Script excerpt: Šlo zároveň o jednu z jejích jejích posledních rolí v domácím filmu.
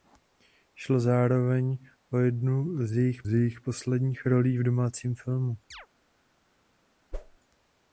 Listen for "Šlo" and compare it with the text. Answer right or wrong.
right